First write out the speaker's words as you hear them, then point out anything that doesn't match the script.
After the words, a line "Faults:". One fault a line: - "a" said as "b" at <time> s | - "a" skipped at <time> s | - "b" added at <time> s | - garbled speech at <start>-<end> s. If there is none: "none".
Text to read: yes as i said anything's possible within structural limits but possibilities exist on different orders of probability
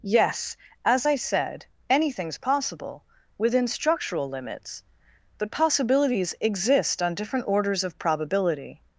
yes as i said anything's possible within structural limits but possibilities exist on different orders of probability
Faults:
none